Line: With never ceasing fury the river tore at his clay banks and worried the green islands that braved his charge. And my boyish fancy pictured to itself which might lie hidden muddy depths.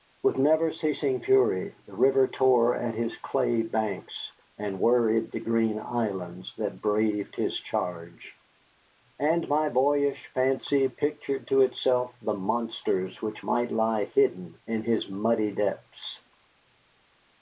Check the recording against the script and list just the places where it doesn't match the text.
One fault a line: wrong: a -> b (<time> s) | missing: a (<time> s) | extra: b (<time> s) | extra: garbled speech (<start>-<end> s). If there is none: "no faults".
extra: the monsters (12.2 s)
extra: in his (14.7 s)